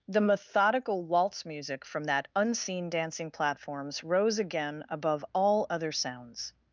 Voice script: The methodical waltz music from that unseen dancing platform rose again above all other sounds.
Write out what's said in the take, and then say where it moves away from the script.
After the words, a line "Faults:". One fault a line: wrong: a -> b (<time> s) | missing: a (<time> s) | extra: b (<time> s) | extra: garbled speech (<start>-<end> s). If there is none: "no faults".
The methodical waltz music from that unseen dancing platforms rose again above all other sounds.
Faults:
wrong: platform -> platforms (3.3 s)